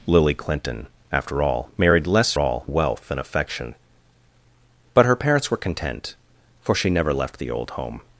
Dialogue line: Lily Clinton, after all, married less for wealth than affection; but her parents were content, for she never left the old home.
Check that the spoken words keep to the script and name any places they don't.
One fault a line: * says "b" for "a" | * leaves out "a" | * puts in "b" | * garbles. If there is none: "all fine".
* says "all" for "for"